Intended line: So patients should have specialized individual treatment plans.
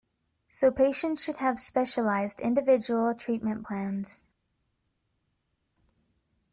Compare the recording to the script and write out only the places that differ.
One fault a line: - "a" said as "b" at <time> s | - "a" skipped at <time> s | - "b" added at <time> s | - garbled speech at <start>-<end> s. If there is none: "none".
none